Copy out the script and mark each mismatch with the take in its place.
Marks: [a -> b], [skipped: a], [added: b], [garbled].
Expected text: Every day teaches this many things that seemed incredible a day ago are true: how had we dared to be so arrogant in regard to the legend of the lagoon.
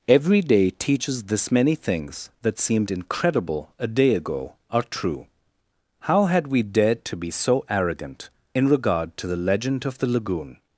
Every day teaches this many things that seemed incredible a day ago are true: how had we dared to be so arrogant in regard to the legend of the lagoon.